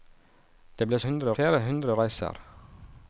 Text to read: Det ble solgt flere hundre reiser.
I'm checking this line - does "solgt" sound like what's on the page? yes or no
no